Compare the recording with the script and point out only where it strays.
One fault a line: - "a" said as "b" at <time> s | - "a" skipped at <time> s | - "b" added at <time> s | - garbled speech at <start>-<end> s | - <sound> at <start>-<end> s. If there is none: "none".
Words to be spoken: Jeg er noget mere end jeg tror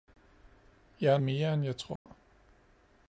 - "noget" skipped at 1.2 s
- dropout at 2.0-2.1 s